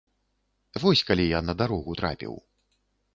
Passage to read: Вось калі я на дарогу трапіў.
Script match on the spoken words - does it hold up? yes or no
yes